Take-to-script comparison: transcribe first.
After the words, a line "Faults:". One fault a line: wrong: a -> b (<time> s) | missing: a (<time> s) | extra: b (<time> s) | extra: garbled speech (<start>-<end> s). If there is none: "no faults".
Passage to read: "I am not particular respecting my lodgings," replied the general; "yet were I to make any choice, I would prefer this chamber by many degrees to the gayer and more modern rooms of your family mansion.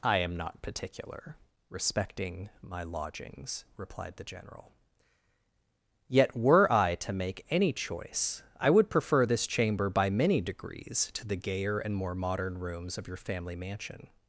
"I am not particular respecting my lodgings," replied the general; "yet were I to make any choice, I would prefer this chamber by many degrees to the gayer and more modern rooms of your family mansion.
Faults:
no faults